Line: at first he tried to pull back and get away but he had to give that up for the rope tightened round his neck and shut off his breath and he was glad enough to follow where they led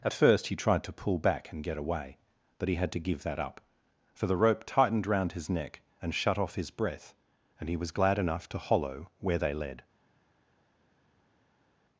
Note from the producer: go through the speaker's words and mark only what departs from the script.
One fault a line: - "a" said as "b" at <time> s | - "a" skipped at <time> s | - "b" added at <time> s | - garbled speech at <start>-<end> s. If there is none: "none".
- "follow" said as "hollow" at 8.6 s